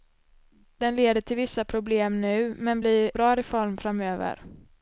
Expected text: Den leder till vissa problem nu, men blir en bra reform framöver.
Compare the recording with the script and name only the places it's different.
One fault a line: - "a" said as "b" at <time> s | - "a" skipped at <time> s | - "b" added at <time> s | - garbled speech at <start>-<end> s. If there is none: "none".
- "en" skipped at 3.1 s